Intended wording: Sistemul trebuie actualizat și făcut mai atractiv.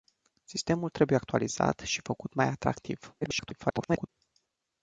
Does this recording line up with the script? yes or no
no